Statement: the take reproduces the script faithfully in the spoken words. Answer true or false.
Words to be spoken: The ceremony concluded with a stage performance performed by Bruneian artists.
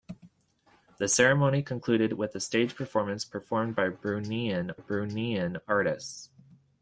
false